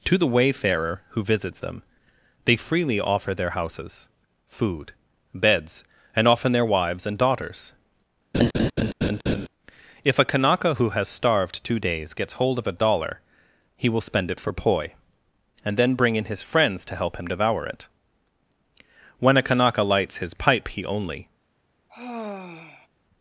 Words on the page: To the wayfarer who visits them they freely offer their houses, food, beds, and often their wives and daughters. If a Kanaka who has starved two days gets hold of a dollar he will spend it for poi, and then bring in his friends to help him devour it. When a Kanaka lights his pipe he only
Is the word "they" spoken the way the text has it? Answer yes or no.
yes